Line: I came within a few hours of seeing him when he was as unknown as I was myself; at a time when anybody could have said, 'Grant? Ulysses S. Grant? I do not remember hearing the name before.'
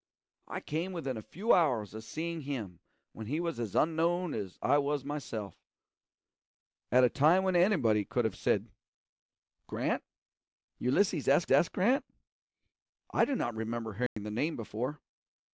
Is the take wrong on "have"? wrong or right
right